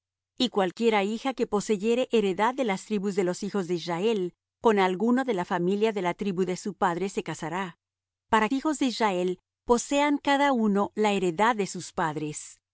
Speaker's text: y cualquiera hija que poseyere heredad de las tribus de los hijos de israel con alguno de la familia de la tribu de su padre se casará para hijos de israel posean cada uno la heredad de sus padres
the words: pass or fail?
pass